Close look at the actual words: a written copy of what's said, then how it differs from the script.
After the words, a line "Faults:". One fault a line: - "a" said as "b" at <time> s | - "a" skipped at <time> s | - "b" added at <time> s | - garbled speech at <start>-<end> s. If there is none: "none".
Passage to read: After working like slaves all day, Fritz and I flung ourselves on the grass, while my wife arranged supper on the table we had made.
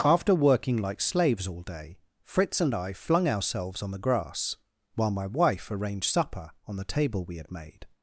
After working like slaves all day, Fritz and I flung ourselves on the grass, while my wife arranged supper on the table we had made.
Faults:
none